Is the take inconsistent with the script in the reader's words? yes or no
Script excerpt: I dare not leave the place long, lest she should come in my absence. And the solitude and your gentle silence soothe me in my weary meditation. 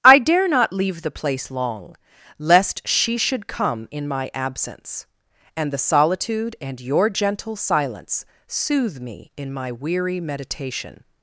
no